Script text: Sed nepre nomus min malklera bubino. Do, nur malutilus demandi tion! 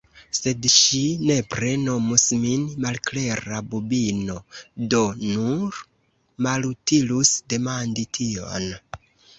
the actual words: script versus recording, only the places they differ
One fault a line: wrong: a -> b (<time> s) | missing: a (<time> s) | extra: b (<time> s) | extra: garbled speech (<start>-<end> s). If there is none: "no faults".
extra: ŝi (0.8 s)